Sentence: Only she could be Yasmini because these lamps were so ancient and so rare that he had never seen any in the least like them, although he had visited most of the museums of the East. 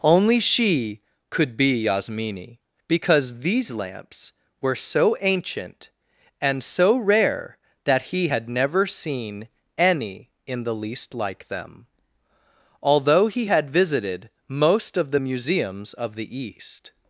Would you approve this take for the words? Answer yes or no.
yes